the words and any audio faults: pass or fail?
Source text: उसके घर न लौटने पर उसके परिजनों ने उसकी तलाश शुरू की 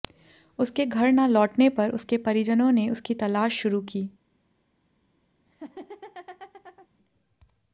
fail